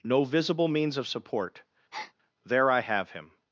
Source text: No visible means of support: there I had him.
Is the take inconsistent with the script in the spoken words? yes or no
yes